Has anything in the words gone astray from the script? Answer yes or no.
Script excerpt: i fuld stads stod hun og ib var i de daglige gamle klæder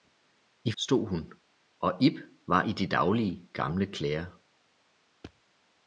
yes